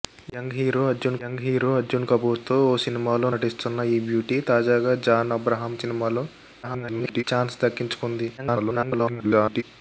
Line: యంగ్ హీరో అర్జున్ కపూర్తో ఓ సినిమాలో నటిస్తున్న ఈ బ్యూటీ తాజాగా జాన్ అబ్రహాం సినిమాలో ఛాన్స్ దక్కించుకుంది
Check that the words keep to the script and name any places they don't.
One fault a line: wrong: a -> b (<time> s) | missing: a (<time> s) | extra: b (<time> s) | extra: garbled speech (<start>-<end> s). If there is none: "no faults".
extra: యంగ్ హీరో అర్జున్ (1.2 s)
extra: garbled speech (6.6-7.2 s)
extra: garbled speech (8.4-9.6 s)